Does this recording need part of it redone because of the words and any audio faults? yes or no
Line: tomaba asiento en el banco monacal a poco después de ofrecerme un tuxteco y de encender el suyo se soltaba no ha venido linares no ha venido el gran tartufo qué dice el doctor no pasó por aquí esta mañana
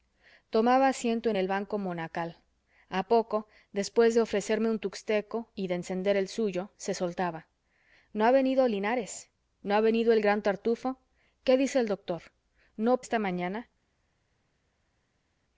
yes